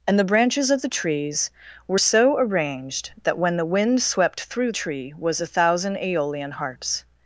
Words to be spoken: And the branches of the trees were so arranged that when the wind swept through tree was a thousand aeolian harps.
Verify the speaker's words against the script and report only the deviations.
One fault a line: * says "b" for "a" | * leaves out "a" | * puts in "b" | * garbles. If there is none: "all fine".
all fine